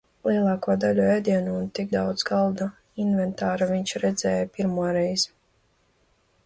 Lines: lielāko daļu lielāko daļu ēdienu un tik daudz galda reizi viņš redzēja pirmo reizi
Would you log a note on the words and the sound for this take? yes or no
yes